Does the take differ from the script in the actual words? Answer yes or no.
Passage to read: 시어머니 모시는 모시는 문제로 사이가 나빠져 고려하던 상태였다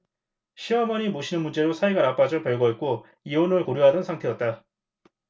yes